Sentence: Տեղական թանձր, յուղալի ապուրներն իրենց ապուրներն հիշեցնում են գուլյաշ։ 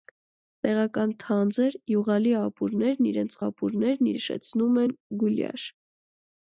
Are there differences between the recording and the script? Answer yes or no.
no